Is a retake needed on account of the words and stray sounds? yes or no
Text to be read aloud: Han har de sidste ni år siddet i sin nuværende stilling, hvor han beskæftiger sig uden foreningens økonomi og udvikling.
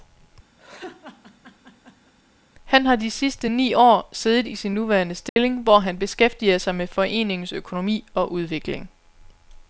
yes